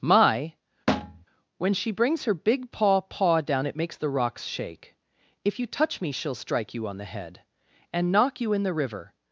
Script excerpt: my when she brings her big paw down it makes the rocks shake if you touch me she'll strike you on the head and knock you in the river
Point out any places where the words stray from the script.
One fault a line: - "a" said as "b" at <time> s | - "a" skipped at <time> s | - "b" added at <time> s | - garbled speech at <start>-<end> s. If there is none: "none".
- "paw" added at 3.0 s